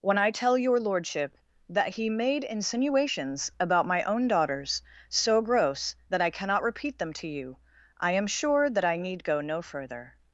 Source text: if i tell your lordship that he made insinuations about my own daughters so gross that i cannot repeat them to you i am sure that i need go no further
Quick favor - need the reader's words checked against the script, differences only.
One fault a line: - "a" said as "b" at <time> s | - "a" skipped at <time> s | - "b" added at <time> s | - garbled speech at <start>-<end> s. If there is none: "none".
- "if" said as "when" at 0.0 s